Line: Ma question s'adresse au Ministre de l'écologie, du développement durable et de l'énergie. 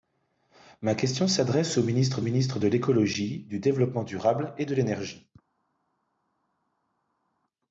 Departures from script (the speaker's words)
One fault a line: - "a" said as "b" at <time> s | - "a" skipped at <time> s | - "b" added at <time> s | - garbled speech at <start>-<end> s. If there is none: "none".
- "Ministre" added at 2.2 s